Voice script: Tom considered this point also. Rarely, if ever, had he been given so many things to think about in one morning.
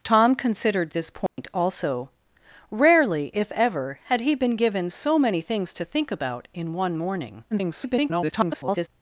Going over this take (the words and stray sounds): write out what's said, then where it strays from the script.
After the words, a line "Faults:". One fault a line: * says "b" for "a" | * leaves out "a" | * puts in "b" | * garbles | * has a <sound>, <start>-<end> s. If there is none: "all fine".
Tom considered this point also. Rarely, if ever, had he been given so many things to think about in one morning. [garbled]
Faults:
* has a dropout, 1.3-1.4 s
* garbles